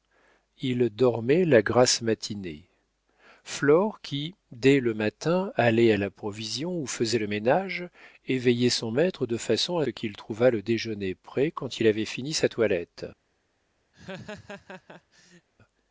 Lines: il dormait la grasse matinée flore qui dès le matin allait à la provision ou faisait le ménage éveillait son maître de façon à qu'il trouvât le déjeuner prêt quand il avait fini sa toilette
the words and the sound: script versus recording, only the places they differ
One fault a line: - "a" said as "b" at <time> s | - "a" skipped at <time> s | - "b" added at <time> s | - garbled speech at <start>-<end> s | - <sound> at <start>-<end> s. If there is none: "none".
- laugh at 13.9-15.5 s